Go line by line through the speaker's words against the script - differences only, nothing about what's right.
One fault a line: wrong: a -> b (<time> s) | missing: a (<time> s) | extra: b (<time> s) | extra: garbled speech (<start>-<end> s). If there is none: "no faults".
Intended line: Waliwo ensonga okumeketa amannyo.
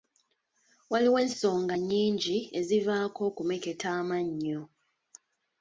extra: nnyingi ezivaako (1.8 s)